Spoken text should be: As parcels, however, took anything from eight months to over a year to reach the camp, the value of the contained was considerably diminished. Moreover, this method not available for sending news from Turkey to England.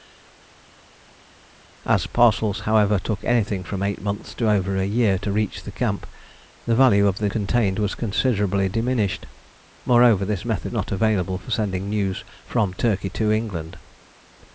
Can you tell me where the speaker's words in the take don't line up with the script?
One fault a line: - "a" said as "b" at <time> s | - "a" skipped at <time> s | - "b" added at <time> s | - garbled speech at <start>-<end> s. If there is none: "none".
none